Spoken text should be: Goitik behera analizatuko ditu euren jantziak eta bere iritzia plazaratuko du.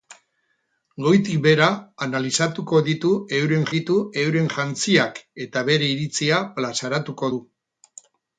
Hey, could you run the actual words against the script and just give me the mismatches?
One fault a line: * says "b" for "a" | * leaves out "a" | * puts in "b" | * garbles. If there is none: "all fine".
* puts in "ditu euren"